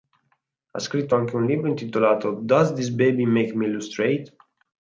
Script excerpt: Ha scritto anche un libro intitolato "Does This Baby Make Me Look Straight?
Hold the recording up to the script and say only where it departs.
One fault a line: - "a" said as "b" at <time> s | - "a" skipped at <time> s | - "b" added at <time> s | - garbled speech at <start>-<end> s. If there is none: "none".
none